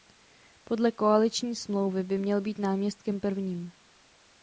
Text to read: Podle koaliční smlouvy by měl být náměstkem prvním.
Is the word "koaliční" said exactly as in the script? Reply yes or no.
yes